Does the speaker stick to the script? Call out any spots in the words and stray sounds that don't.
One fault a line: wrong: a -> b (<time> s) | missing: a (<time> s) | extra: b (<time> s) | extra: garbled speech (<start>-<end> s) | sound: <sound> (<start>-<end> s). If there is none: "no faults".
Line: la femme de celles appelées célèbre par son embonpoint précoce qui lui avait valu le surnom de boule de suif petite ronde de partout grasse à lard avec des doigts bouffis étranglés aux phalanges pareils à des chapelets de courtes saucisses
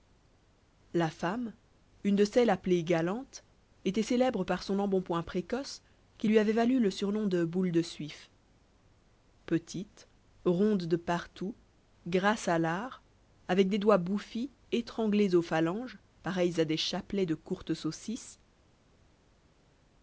extra: une (2.0 s)
extra: galantes était (2.8 s)